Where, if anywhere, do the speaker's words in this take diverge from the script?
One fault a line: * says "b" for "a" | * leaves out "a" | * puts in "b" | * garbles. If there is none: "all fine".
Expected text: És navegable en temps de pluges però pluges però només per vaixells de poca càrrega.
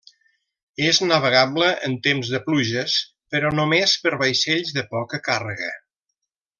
* leaves out "pluges però"